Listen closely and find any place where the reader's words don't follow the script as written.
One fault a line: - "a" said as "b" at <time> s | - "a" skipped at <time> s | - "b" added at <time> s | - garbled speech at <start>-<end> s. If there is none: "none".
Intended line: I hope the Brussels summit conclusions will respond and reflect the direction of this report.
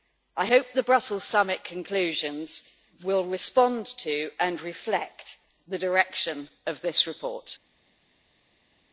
- "to" added at 4.0 s